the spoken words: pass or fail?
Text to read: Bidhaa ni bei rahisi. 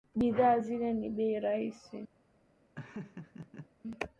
fail